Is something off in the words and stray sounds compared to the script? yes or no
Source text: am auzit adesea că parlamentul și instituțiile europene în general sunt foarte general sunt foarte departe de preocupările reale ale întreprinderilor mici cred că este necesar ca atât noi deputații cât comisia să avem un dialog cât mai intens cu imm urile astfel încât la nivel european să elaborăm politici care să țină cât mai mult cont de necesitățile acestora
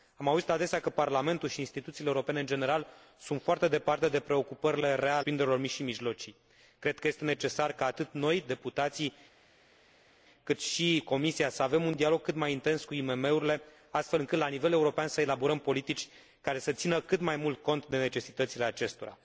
yes